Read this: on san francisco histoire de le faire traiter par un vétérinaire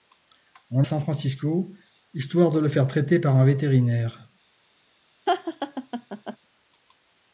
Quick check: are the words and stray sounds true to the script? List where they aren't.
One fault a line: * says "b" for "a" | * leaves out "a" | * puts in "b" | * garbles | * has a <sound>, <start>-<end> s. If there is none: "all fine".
* has a laugh, 5.3-6.4 s